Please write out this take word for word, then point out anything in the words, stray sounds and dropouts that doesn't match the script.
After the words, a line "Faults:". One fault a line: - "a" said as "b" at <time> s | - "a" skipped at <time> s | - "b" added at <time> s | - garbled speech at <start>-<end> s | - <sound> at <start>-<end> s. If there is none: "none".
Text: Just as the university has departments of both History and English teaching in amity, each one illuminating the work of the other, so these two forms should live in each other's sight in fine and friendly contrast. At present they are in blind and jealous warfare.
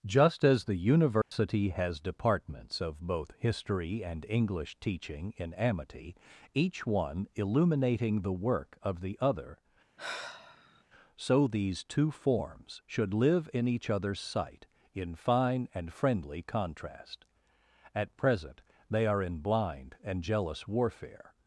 Just as the university has departments of both History and English teaching in amity, each one illuminating the work of the other, so these two forms should live in each other's sight in fine and friendly contrast. At present they are in blind and jealous warfare.
Faults:
- dropout at 1.2-1.3 s
- sigh at 10.0-10.8 s